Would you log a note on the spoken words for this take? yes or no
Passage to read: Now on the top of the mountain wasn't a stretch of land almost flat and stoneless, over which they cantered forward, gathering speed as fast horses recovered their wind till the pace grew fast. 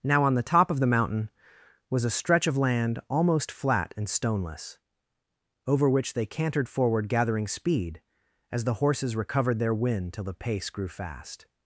yes